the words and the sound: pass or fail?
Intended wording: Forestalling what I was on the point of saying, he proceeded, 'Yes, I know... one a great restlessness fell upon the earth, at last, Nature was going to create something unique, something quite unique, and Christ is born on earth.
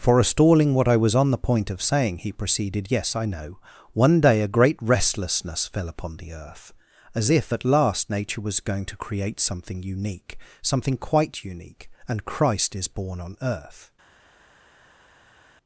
fail